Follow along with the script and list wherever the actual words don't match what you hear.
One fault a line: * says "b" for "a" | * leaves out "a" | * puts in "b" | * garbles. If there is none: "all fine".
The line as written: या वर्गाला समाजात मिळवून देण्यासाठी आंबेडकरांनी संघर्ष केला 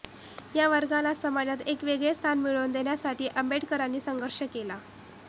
* puts in "एक वेगळे स्थान"